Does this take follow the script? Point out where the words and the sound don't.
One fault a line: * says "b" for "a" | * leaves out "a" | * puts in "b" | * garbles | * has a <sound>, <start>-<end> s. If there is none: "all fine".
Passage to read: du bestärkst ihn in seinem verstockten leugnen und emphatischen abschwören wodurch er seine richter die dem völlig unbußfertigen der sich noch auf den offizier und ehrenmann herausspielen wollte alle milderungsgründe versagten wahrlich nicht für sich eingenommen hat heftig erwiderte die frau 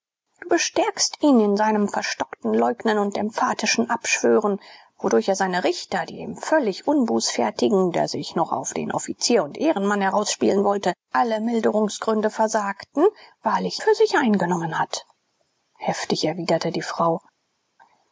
* leaves out "nicht"